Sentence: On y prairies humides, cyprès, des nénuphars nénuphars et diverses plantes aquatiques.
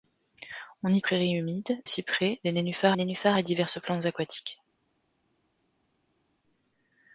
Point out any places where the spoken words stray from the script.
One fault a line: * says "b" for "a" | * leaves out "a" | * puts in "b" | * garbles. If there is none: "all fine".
all fine